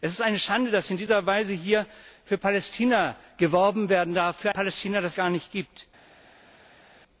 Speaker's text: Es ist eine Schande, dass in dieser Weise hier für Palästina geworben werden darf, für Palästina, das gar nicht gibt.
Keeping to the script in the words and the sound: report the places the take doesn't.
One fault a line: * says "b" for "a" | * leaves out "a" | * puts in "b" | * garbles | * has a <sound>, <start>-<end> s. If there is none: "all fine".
all fine